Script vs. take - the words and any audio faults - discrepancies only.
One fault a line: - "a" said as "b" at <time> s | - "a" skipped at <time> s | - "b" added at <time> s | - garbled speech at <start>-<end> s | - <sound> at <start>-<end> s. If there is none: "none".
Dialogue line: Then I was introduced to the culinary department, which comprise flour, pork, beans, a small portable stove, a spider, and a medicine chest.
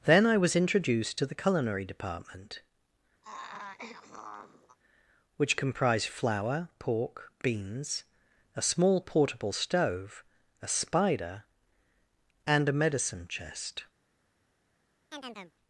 - throat clearing at 3.2-4.8 s
- "comprise" said as "comprised" at 5.5 s
- chirp at 15.1-15.5 s